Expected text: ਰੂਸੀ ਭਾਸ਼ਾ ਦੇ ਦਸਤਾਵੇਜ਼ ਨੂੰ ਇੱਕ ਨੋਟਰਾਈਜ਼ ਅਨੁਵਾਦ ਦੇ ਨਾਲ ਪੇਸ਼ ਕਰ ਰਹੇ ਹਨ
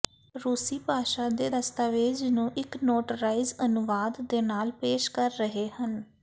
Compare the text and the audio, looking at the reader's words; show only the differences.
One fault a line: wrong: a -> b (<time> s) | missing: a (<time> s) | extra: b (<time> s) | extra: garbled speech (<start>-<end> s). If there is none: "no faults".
no faults